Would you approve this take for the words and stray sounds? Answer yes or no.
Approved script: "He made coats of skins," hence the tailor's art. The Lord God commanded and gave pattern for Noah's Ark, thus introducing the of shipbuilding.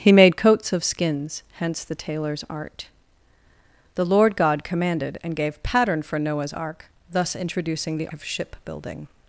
yes